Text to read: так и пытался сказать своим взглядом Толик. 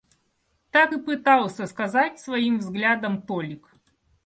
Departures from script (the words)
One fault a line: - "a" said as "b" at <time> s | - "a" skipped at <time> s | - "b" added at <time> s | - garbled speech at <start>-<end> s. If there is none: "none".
none